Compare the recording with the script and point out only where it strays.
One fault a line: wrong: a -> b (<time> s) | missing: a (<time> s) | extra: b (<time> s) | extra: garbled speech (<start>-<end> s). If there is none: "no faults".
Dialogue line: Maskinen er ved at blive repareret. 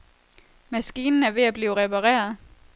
no faults